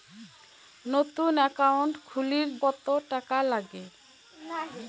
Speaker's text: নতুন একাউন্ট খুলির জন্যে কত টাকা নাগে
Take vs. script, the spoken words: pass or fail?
fail